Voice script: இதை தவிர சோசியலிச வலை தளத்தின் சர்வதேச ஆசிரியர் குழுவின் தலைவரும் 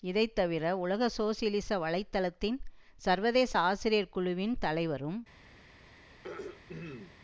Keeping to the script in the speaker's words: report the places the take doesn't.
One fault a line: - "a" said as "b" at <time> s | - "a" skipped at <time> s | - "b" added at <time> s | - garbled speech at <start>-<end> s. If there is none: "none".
- "உலக" added at 0.8 s